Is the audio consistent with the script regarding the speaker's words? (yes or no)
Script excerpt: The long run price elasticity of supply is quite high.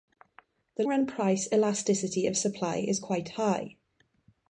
no